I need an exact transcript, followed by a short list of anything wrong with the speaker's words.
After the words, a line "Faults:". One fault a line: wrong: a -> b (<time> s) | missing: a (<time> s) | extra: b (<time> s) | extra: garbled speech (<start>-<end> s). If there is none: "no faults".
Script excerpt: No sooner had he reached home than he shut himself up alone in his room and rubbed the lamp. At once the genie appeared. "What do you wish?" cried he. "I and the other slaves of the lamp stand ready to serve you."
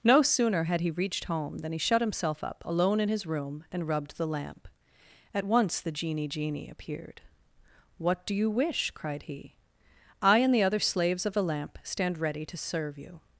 No sooner had he reached home than he shut himself up alone in his room and rubbed the lamp. At once the genie genie appeared. "What do you wish?" cried he. "I and the other slaves of the lamp stand ready to serve you."
Faults:
extra: genie (6.3 s)